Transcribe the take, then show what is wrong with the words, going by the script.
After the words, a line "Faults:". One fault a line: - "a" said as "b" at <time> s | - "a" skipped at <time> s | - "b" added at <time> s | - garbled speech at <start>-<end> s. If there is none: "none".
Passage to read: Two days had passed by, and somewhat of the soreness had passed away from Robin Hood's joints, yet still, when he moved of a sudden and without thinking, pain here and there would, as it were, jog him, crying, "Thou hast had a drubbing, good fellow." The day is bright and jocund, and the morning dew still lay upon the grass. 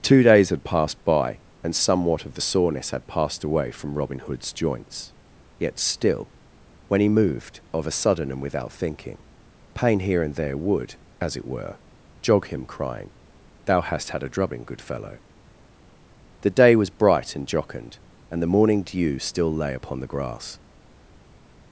Two days had passed by, and somewhat of the soreness had passed away from Robin Hood's joints, yet still, when he moved of a sudden and without thinking, pain here and there would, as it were, jog him, crying, "Thou hast had a drubbing, good fellow." The day was bright and jocund, and the morning dew still lay upon the grass.
Faults:
- "is" said as "was" at 16.8 s